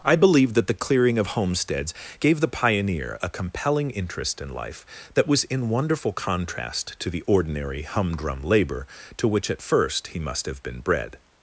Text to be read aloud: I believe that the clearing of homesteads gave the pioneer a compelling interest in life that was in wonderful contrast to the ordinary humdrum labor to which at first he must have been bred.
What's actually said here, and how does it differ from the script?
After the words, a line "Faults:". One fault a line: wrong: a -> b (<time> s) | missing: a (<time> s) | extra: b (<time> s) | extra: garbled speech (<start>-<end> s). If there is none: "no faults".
I believe that the clearing of homesteads gave the pioneer a compelling interest in life that was in wonderful contrast to the ordinary humdrum labor to which at first he must have been bred.
Faults:
no faults